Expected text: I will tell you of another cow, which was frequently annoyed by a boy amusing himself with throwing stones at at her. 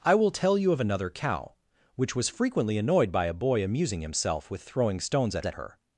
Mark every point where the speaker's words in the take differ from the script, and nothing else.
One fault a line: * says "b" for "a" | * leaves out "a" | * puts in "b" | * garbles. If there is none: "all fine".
all fine